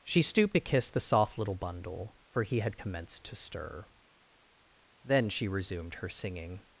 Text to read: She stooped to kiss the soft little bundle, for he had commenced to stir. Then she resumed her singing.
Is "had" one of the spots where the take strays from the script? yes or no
no